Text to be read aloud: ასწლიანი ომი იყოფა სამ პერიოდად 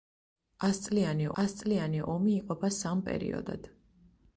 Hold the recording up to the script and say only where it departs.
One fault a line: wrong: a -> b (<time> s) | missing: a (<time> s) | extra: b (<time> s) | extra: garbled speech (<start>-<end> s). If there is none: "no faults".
extra: ასწლიანი (1.4 s)